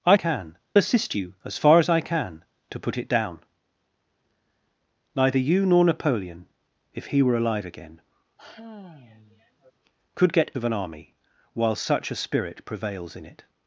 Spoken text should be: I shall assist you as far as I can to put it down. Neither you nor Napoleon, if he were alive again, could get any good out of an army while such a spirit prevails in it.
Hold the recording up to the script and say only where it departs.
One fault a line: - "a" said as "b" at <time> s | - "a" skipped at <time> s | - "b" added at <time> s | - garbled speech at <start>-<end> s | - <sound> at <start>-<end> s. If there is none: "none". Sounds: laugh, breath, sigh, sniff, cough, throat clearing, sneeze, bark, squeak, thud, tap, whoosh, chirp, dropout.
- "shall" said as "can" at 0.1 s
- sigh at 8.4-9.7 s
- "any good out" skipped at 10.5 s